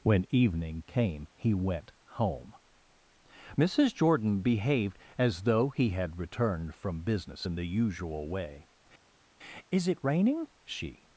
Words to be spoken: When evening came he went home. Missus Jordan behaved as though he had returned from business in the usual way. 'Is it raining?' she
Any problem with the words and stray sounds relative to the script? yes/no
no